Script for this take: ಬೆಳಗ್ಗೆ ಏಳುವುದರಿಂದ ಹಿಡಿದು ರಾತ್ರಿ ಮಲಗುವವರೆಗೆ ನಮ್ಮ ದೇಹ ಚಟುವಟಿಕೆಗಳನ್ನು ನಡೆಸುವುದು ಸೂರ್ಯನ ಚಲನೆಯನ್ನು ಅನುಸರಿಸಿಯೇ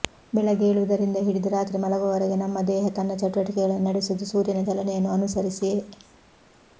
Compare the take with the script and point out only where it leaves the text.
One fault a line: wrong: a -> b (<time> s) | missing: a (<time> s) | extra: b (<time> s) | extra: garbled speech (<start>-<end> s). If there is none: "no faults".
extra: ತನ್ನ (2.9 s)